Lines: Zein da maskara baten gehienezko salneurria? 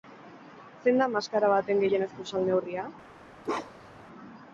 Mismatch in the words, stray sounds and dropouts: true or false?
true